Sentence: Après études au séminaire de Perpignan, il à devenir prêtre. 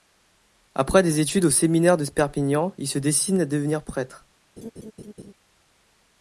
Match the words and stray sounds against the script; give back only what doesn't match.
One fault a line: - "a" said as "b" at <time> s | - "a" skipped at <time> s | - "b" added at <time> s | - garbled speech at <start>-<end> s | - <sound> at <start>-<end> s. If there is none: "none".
- "des" added at 1.0 s
- "se destine" added at 2.9 s
- laugh at 4.6-5.3 s